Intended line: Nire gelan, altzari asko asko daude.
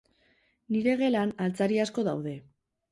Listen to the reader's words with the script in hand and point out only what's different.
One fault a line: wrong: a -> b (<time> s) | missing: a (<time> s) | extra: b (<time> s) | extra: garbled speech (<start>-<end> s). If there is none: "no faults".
missing: asko (2.1 s)